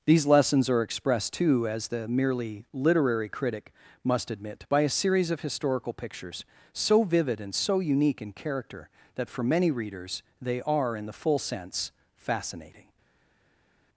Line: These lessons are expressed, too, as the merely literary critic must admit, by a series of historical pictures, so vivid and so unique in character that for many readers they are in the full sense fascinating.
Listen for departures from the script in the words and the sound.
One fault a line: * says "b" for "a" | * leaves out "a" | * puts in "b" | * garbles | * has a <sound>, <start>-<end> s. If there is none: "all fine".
all fine